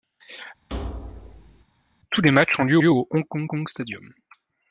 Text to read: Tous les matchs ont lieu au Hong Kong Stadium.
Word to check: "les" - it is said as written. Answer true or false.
true